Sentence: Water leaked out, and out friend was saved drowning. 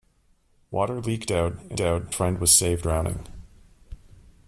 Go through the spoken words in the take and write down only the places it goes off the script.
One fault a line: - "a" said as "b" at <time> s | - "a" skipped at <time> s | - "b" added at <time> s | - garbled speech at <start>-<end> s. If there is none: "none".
none